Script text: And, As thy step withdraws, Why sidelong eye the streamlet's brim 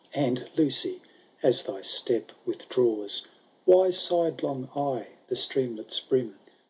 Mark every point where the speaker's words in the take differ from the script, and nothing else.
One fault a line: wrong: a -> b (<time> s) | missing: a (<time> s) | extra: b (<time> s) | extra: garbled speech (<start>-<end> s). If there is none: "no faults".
extra: Lucy (0.6 s)